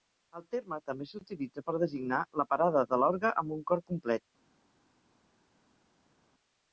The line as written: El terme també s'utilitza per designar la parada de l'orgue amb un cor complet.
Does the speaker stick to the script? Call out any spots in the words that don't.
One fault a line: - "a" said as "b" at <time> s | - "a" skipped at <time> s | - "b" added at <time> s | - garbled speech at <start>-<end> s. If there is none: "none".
none